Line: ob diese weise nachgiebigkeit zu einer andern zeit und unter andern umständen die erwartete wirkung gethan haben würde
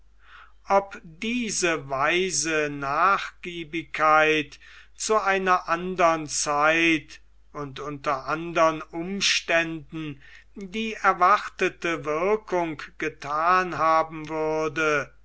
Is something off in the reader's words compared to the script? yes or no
no